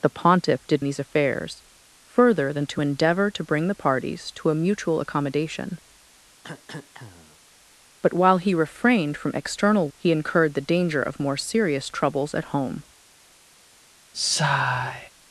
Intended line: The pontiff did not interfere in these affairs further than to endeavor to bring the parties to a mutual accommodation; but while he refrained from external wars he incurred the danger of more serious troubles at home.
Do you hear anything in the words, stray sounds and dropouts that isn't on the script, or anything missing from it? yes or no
yes